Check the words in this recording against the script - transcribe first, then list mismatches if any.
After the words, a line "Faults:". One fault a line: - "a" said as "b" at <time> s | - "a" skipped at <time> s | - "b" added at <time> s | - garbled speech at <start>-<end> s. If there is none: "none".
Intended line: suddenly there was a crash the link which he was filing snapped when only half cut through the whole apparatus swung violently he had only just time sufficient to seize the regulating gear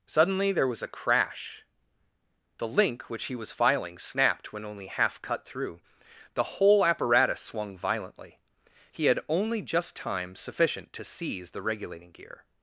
suddenly there was a crash the link which he was filing snapped when only half cut through the whole apparatus swung violently he had only just time sufficient to seize the regulating gear
Faults:
none